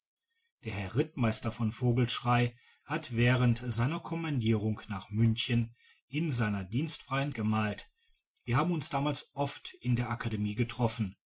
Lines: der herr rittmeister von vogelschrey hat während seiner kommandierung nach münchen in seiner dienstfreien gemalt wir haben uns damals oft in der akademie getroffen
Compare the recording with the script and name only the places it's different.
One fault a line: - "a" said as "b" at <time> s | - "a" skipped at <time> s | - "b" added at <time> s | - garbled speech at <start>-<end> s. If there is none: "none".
none